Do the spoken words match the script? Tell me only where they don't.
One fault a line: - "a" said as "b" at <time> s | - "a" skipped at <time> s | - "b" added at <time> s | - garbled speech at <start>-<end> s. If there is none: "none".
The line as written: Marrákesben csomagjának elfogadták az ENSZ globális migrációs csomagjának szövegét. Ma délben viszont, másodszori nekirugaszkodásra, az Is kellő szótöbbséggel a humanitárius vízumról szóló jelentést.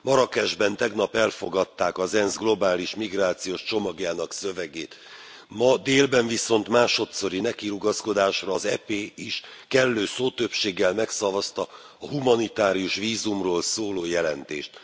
- "csomagjának" said as "tegnap" at 0.8 s
- "EP" added at 8.6 s
- "megszavazta" added at 10.9 s